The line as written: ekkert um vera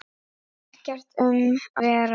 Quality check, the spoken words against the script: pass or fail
pass